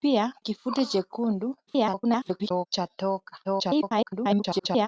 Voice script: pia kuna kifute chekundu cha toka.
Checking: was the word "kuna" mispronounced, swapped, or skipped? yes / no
yes